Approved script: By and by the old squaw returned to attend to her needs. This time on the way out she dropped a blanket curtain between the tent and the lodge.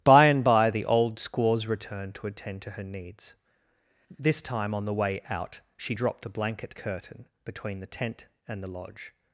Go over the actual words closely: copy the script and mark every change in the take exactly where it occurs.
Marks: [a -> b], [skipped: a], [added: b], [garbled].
By and by the old [squaw -> squaws] returned to attend to her needs. This time on the way out she dropped a blanket curtain between the tent and the lodge.